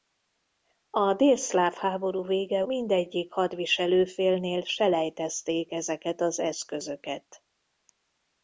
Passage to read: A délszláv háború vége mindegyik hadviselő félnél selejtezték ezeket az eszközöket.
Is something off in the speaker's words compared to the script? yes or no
no